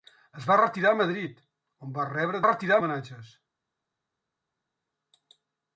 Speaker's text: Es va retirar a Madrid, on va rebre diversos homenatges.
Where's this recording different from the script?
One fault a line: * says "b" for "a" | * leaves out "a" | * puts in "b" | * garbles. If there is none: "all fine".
* says "retirar" for "diversos"